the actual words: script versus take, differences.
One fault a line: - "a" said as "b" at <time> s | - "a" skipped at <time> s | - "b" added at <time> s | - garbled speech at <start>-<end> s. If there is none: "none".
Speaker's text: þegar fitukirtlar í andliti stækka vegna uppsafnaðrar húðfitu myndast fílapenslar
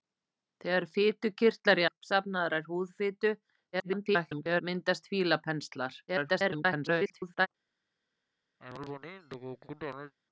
- "andliti stækka vegna" skipped at 1.9 s
- garbled speech at 3.7-4.6 s
- garbled speech at 6.1-7.5 s